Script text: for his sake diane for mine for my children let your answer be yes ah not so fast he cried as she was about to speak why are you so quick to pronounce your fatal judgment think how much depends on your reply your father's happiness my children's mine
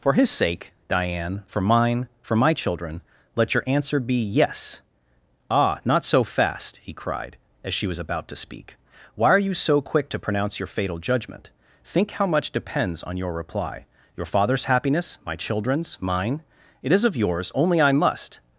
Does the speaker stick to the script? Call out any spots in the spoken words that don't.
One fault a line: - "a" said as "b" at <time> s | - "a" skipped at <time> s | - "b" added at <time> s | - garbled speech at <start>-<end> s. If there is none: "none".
- "it is of yours only i must" added at 16.8 s